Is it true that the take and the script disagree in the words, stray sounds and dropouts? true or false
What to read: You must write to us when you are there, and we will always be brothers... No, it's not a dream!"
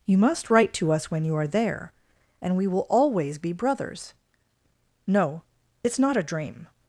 false